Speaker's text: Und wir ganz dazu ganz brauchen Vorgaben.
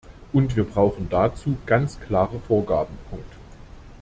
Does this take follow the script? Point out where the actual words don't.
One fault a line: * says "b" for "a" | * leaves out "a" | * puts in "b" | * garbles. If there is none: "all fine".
* says "brauchen" for "ganz"
* says "klare" for "brauchen"